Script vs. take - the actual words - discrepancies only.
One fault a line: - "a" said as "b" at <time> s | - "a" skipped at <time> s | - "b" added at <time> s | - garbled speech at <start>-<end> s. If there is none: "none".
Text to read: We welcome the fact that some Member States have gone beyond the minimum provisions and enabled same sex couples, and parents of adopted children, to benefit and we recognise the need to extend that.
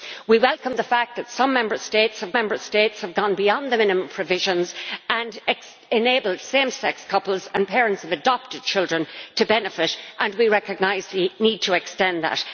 - "Member States have" added at 2.3 s